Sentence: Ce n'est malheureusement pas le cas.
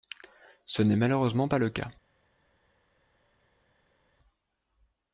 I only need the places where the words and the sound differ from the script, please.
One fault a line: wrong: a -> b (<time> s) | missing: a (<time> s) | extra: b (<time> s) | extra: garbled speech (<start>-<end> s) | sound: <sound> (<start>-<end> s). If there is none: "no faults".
no faults